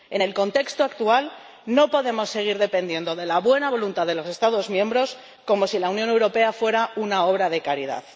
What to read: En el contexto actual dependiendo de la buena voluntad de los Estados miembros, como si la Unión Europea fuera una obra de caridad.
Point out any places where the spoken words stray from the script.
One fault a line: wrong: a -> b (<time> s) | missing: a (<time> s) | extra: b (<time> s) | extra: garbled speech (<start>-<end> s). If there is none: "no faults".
extra: no podemos seguir (1.6 s)